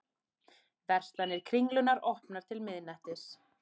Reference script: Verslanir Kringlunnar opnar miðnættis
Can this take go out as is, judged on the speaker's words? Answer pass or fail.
fail